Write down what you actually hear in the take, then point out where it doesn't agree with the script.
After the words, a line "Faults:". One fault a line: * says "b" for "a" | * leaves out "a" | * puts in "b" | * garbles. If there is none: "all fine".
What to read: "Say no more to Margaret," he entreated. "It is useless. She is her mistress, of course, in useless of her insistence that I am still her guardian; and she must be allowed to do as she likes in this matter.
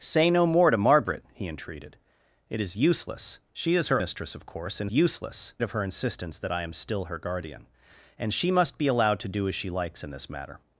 "Say no more to Margaret," he entreated. "It is useless. She is her mistress, of course, in useless of her insistence that I am still her guardian; and she must be allowed to do as she likes in this matter.
Faults:
all fine